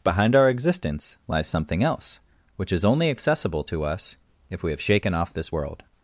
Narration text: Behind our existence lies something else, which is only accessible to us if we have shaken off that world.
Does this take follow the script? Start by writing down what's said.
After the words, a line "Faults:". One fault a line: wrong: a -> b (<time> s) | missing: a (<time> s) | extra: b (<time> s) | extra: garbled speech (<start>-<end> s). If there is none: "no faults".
Behind our existence lies something else, which is only accessible to us if we have shaken off this world.
Faults:
wrong: that -> this (5.3 s)